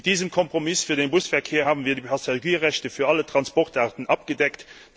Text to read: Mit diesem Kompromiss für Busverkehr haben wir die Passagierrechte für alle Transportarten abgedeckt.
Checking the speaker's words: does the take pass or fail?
fail